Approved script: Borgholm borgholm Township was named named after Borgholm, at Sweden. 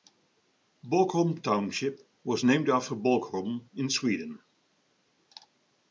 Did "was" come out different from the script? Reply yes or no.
no